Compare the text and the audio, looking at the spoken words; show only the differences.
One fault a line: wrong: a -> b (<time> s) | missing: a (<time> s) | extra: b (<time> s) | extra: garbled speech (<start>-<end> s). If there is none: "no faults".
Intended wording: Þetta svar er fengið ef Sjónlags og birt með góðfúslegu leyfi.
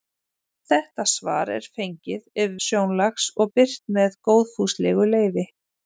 no faults